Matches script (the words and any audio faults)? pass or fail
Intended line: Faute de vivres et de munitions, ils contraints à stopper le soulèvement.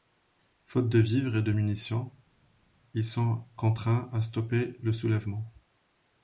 fail